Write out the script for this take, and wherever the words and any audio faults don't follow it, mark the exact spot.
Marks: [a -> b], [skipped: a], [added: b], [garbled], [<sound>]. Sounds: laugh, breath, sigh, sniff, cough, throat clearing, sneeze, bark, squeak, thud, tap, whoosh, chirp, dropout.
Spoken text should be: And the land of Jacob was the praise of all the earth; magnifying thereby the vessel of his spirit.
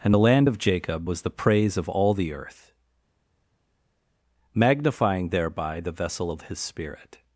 And the land of Jacob was the praise of all the earth; magnifying thereby the vessel of his spirit.